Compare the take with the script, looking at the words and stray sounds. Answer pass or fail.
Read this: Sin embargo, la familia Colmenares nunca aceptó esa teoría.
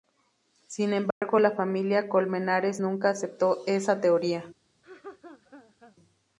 fail